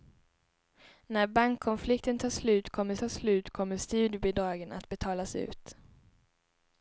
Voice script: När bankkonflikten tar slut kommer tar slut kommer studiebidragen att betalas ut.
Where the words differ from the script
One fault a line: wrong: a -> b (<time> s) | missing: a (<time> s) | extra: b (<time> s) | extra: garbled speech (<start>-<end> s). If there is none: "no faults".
no faults